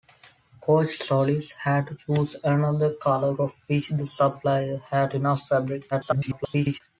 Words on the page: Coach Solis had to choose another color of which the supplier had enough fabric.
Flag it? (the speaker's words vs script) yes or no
yes